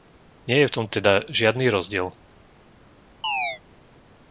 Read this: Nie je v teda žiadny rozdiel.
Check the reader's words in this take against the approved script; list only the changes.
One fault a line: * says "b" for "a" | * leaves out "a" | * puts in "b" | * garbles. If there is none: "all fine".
* puts in "tom"